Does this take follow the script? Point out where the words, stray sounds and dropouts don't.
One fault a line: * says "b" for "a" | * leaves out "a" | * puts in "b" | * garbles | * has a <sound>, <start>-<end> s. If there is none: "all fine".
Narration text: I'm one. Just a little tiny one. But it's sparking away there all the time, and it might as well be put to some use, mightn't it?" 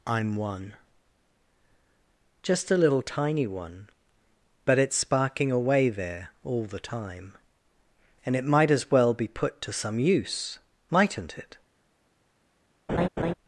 * has a laugh, 12.9-13.3 s